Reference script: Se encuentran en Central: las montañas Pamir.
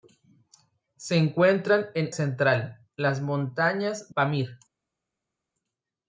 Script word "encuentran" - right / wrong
right